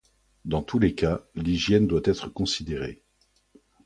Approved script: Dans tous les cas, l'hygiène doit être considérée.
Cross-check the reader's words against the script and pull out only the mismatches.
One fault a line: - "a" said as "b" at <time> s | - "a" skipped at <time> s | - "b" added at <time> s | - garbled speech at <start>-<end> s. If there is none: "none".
none